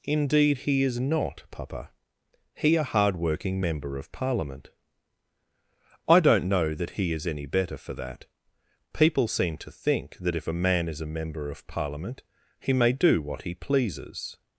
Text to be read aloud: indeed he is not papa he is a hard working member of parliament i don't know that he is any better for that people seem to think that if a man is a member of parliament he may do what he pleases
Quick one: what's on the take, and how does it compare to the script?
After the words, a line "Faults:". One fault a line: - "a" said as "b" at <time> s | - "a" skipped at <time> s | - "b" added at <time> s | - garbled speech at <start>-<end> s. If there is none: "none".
indeed he is not papa he a hard working member of parliament i don't know that he is any better for that people seem to think that if a man is a member of parliament he may do what he pleases
Faults:
- "is" skipped at 2.8 s